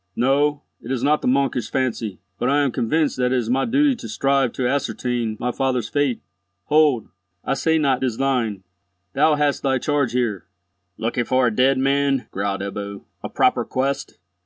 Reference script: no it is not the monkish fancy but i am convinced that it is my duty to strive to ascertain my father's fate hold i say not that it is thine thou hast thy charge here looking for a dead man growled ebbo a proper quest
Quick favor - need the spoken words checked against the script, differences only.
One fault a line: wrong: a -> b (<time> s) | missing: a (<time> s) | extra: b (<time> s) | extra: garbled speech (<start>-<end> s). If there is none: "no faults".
missing: that it (8.1 s)